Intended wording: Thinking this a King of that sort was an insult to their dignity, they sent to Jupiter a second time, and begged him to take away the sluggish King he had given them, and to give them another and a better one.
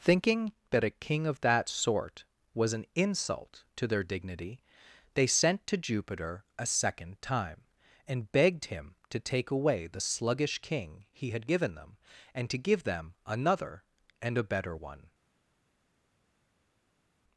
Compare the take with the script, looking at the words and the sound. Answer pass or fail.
fail